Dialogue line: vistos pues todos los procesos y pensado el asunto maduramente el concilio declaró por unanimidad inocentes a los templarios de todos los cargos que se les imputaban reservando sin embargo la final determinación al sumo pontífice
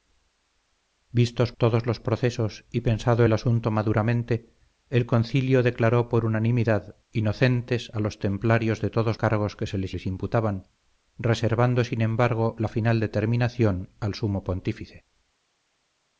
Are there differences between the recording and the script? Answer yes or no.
yes